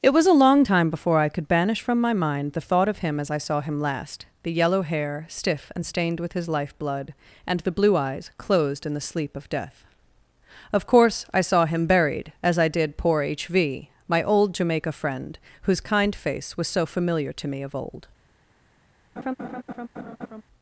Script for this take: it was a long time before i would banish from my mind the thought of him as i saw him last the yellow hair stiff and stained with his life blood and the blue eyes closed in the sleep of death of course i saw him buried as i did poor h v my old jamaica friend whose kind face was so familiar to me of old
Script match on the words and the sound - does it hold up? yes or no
no